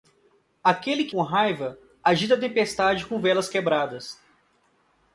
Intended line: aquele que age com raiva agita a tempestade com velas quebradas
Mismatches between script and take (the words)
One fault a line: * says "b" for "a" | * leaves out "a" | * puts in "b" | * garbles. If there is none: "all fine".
* leaves out "age"